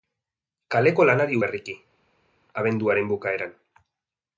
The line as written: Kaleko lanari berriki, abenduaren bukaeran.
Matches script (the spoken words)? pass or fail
pass